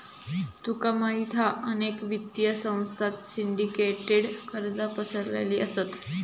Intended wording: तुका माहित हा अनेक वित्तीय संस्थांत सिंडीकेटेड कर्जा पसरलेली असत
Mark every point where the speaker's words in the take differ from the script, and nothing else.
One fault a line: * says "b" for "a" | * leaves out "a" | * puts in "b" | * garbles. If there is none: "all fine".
all fine